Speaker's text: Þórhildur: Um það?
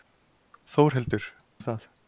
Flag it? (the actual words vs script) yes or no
no